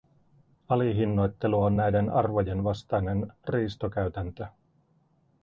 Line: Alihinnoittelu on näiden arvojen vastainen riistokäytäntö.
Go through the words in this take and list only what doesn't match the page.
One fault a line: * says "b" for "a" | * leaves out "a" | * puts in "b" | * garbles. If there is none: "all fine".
all fine